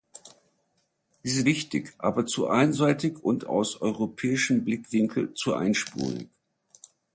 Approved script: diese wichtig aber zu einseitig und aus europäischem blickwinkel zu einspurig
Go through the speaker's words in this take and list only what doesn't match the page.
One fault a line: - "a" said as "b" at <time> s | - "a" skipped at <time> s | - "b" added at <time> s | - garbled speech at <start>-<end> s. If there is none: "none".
none